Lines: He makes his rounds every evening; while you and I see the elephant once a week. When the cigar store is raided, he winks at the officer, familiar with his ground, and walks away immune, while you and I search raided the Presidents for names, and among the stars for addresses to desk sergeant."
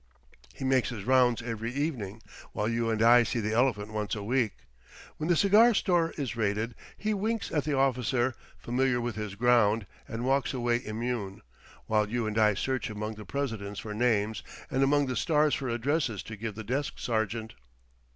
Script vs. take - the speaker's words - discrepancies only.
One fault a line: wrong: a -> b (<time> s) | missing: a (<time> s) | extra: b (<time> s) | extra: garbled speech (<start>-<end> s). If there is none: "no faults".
wrong: raided -> among (12.9 s)
extra: give the (16.4 s)